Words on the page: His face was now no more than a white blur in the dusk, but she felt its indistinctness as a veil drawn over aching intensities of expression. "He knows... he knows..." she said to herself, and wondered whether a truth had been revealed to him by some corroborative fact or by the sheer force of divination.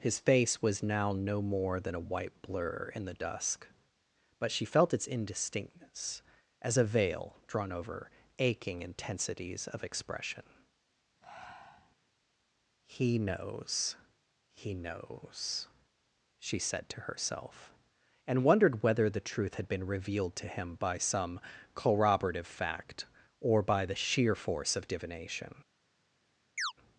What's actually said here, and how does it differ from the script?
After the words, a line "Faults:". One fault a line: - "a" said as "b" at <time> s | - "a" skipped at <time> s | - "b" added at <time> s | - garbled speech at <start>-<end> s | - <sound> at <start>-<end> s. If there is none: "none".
His face was now no more than a white blur in the dusk, but she felt its indistinctness as a veil drawn over aching intensities of expression. "He knows... he knows..." she said to herself, and wondered whether the truth had been revealed to him by some corroborative fact or by the sheer force of divination.
Faults:
- breath at 11.2-12.0 s
- "a" said as "the" at 19.1 s
- chirp at 26.6-26.7 s